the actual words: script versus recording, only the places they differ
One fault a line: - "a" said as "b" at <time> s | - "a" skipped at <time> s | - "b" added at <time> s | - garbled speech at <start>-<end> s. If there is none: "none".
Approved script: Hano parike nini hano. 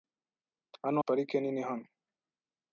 none